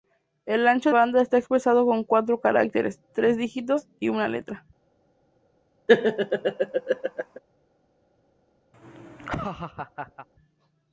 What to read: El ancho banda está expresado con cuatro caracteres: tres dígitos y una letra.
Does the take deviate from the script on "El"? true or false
false